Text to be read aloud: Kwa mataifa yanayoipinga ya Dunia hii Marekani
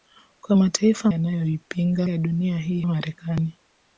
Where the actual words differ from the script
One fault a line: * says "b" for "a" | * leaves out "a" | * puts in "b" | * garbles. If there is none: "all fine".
all fine